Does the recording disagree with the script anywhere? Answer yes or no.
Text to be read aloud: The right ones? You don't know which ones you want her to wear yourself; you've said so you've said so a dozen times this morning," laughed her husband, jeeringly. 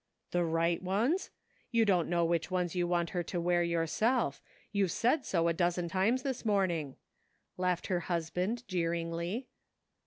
yes